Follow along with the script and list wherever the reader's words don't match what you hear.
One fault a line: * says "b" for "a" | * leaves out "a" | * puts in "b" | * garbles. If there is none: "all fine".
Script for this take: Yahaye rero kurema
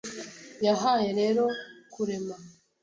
all fine